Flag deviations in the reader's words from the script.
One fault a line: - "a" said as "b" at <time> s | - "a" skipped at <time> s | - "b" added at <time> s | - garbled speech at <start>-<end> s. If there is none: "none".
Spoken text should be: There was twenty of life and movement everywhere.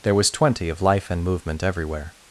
none